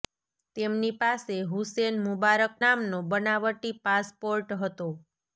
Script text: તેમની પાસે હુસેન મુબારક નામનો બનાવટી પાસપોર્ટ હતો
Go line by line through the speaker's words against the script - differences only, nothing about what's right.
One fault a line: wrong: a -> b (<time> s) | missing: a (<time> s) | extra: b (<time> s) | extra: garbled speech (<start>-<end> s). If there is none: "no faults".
no faults